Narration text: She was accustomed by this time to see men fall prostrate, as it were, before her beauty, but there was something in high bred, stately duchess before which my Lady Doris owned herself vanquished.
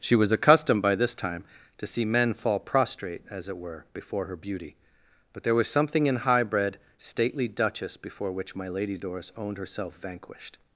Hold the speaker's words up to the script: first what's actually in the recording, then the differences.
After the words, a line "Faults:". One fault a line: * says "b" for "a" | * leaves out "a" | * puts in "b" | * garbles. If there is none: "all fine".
She was accustomed by this time to see men fall prostrate, as it were, before her beauty, but there was something in high bred, stately duchess before which my Lady Doris owned herself vanquished.
Faults:
all fine